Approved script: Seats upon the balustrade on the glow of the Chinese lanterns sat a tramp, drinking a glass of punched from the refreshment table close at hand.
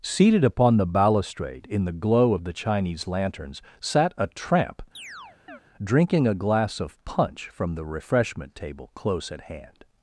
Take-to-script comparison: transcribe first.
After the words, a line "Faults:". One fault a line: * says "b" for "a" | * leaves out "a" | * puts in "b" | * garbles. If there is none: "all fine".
Seated upon the balustrade in the glow of the Chinese lanterns sat a tramp, drinking a glass of punch from the refreshment table close at hand.
Faults:
* says "Seated" for "Seats"
* says "in" for "on"
* says "punch" for "punched"